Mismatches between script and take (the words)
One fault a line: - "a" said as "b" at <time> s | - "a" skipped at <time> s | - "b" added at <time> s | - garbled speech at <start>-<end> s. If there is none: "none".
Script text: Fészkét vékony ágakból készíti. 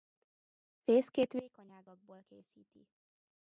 none